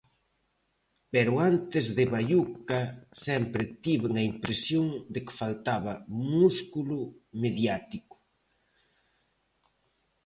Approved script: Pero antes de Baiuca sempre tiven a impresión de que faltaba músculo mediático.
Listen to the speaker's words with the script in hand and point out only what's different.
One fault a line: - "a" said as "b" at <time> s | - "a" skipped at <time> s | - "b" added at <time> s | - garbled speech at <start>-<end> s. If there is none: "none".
none